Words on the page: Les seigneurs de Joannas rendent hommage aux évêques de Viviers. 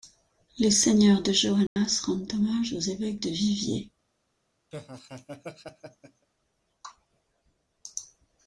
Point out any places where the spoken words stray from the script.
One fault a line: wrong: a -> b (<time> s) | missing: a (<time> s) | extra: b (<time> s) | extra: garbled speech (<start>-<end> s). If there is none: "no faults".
no faults